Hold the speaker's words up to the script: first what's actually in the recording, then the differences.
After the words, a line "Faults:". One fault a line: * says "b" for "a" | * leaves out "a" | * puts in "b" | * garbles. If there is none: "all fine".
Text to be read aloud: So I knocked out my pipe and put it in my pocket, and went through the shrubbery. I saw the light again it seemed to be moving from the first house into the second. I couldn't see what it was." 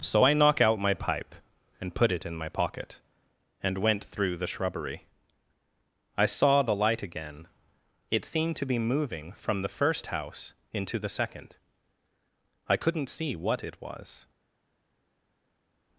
So I knock out my pipe and put it in my pocket, and went through the shrubbery. I saw the light again it seemed to be moving from the first house into the second. I couldn't see what it was."
Faults:
* says "knock" for "knocked"